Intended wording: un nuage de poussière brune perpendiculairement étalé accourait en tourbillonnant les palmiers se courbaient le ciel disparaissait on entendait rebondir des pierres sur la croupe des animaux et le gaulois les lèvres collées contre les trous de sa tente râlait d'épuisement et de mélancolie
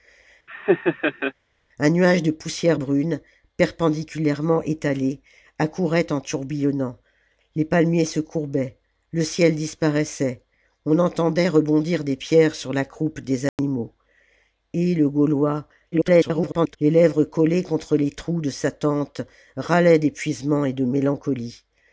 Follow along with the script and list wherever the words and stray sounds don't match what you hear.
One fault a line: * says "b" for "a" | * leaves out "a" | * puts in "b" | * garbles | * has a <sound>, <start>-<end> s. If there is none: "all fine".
* has a laugh, 0.5-1.3 s
* has a dropout, 13.5-13.6 s
* garbles